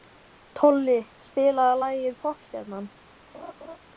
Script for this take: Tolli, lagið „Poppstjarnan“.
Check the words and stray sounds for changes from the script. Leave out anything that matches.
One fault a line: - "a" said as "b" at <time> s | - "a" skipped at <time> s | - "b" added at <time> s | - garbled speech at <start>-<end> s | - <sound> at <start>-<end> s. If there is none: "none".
- "spilaðu" added at 1.3 s
- laugh at 3.3-3.8 s